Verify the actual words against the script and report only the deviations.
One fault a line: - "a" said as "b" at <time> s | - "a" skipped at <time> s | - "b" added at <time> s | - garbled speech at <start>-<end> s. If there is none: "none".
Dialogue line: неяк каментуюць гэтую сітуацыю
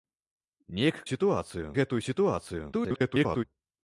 - "каментуюць" said as "сітуацыю" at 1.1 s
- garbled speech at 2.7-3.4 s